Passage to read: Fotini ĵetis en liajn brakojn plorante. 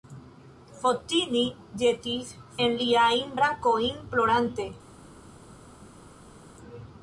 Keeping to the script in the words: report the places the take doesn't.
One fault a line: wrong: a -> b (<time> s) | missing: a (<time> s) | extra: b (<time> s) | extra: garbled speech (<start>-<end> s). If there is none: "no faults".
no faults